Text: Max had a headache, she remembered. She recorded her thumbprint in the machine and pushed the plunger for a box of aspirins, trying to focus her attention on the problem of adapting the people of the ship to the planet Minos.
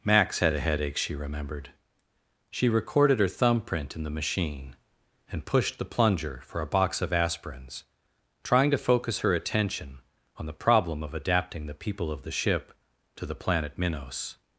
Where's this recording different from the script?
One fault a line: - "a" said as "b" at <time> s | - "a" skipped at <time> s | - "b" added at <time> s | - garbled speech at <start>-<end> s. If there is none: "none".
none